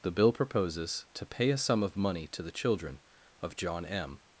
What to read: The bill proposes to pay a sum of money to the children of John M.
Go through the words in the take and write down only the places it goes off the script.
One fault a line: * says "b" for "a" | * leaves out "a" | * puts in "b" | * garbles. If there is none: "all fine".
all fine